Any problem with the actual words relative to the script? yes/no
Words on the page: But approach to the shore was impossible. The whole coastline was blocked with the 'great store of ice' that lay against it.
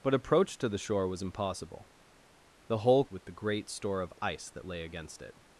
yes